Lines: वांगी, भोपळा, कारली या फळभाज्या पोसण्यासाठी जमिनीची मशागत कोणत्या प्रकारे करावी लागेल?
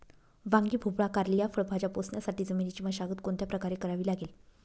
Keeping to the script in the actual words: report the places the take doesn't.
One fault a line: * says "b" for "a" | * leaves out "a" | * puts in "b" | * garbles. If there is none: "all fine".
all fine